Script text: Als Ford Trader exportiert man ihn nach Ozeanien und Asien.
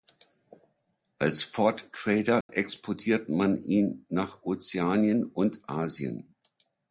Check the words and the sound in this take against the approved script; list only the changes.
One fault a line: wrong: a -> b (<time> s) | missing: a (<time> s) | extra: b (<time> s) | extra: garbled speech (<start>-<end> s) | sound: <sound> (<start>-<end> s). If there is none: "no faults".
sound: dropout (2.4-2.5 s)